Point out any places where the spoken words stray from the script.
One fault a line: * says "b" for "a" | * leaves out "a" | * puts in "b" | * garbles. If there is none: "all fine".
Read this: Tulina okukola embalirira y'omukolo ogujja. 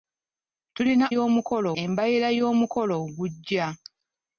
* says "y'omukolo" for "okukola"